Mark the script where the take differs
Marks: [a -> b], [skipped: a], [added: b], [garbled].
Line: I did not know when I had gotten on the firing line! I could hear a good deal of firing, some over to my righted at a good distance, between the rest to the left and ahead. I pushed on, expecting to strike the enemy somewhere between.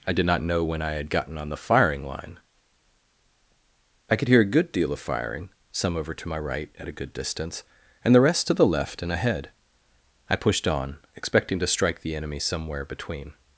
I did not know when I had gotten on the firing line! I could hear a good deal of firing, some over to my [righted -> right] at a good distance, [between -> and] the rest to the left and ahead. I pushed on, expecting to strike the enemy somewhere between.